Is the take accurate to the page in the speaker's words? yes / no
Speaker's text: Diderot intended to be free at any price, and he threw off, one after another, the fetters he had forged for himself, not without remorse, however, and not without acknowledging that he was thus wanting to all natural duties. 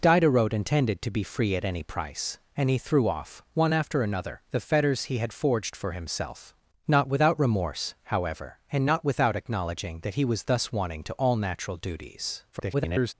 no